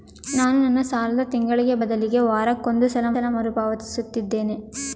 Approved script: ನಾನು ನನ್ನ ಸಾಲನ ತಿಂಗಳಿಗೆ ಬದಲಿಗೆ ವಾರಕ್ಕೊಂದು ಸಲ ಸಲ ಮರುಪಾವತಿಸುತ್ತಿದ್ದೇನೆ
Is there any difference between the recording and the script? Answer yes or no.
no